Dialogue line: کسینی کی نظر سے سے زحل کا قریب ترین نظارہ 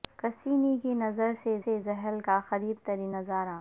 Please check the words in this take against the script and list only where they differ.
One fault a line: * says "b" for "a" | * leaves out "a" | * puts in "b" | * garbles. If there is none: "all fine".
all fine